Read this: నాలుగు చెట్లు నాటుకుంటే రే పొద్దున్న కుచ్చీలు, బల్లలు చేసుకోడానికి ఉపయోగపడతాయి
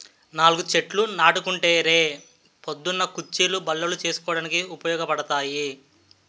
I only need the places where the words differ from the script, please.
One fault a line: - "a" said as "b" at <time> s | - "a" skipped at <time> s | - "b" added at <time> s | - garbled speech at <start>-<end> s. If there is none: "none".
none